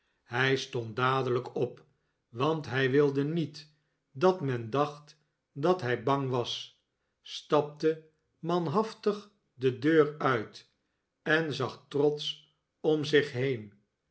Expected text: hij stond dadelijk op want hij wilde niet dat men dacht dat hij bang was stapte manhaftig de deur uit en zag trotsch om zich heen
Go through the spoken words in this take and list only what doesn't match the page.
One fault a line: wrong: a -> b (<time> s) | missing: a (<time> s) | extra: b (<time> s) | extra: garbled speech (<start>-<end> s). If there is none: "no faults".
no faults